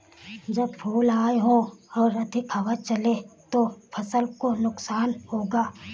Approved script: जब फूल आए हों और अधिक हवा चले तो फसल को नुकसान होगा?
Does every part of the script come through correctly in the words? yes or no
yes